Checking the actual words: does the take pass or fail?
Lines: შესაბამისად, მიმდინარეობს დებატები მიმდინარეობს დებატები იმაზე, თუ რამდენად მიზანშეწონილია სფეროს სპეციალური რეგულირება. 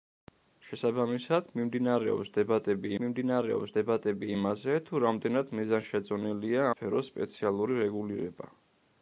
pass